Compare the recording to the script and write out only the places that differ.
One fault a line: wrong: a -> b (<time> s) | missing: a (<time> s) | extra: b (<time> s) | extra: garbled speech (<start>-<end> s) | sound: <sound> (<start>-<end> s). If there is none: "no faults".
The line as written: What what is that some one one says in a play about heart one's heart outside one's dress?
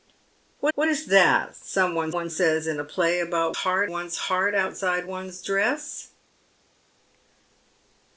no faults